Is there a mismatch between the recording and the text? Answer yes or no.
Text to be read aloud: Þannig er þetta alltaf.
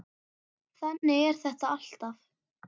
no